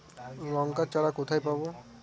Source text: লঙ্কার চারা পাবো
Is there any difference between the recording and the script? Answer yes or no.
yes